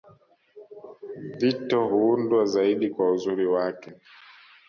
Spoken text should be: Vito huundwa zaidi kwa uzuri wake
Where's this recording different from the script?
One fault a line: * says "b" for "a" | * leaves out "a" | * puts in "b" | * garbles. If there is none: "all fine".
all fine